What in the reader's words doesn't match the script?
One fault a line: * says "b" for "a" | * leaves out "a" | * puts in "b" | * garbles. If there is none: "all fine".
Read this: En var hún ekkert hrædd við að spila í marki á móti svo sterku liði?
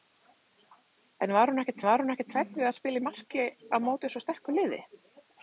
* puts in "var hún ekkert"